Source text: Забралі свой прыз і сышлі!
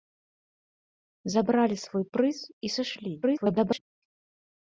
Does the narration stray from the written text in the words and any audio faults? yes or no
yes